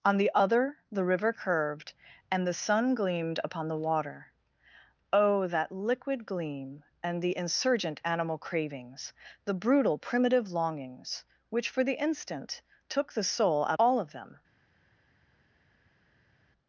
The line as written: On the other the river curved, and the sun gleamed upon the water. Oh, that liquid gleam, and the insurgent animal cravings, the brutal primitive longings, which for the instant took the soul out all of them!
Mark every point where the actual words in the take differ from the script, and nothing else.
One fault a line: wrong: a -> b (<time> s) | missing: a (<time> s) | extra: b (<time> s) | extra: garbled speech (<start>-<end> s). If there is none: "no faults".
no faults